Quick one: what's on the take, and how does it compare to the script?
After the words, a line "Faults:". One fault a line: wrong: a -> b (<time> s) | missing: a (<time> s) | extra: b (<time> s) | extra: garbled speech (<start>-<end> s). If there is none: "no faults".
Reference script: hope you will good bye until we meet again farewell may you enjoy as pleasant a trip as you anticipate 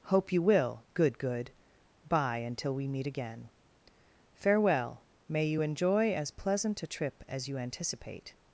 hope you will good good bye until we meet again farewell may you enjoy as pleasant a trip as you anticipate
Faults:
extra: good (1.2 s)